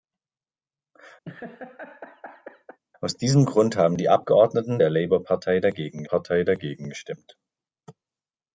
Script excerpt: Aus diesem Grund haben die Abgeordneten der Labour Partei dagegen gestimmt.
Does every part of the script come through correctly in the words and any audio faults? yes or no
no